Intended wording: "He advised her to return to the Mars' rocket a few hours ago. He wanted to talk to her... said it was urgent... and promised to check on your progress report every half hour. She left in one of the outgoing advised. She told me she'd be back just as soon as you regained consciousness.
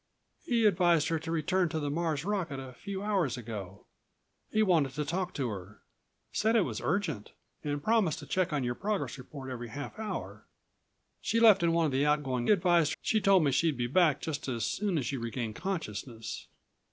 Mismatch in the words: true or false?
false